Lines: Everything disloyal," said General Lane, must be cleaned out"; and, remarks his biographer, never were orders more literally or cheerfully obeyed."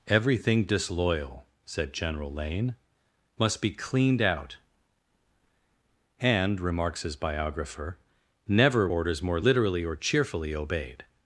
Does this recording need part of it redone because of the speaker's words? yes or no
yes